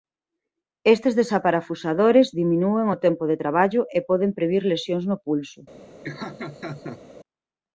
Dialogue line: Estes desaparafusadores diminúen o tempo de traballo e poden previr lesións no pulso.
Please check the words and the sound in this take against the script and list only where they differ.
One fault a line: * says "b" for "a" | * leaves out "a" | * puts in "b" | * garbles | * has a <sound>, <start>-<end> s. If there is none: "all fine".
* has a laugh, 6.0-7.0 s